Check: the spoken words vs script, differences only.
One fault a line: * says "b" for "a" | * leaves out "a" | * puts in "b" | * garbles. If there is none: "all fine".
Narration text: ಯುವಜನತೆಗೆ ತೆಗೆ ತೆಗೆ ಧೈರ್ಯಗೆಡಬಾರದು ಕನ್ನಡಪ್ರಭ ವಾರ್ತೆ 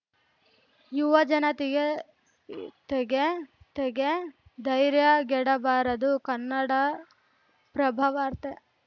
all fine